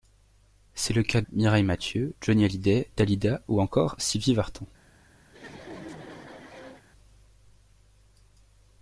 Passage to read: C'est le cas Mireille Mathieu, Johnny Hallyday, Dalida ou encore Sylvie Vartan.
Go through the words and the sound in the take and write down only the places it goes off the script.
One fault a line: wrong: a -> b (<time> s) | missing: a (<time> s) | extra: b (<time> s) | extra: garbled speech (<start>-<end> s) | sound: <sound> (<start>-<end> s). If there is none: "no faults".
sound: laugh (5.3-6.8 s)